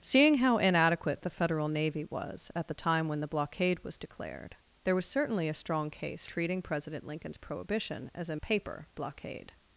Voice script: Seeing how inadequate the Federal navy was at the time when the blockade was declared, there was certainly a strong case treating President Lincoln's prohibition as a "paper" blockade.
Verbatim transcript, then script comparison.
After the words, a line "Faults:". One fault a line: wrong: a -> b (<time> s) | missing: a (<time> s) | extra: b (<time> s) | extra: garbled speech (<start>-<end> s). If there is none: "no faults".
Seeing how inadequate the Federal navy was at the time when the blockade was declared, there was certainly a strong case treating President Lincoln's prohibition as a "paper" blockade.
Faults:
no faults